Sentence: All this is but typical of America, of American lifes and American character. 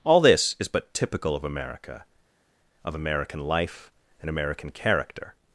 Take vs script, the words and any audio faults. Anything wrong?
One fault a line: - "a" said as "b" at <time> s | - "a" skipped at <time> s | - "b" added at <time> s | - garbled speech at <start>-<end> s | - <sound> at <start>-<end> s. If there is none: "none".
- "lifes" said as "life" at 3.4 s